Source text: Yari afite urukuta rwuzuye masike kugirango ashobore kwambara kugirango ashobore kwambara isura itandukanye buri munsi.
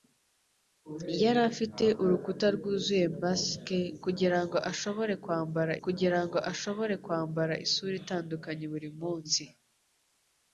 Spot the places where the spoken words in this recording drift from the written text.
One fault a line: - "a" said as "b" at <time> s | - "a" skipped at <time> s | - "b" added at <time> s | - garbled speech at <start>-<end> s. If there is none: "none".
none